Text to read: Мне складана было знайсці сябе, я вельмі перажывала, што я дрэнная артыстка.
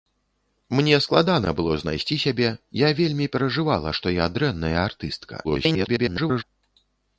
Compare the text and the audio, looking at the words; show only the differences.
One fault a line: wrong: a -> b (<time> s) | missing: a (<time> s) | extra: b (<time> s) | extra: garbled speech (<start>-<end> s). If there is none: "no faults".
extra: garbled speech (5.4-6.4 s)